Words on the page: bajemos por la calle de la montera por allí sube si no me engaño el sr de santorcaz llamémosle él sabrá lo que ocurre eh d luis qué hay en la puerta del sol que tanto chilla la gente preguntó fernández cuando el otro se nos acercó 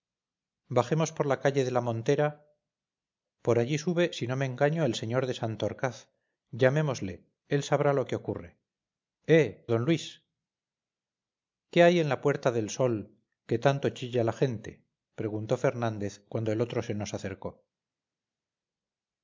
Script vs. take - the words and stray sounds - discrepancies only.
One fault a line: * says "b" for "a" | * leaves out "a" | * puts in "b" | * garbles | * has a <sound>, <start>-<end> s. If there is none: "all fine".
all fine